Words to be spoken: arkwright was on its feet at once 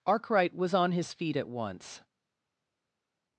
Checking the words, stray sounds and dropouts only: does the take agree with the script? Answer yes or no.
no